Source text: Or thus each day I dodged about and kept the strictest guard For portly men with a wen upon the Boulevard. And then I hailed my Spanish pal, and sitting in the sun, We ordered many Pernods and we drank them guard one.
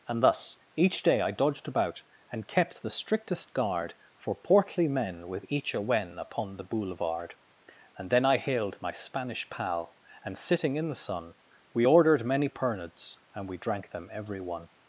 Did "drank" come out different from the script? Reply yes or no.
no